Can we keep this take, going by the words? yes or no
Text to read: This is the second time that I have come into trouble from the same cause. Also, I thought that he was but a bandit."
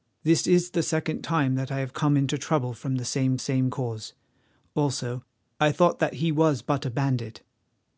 no